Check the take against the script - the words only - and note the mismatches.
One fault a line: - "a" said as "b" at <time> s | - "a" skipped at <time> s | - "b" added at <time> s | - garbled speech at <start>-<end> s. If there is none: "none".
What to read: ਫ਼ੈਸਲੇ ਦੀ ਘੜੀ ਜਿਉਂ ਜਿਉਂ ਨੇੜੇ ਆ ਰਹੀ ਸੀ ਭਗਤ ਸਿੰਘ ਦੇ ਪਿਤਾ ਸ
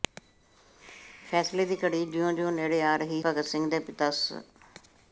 - "ਸੀ" skipped at 3.2 s